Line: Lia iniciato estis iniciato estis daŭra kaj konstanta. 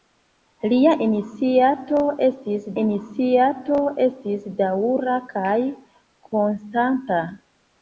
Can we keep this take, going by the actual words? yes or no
yes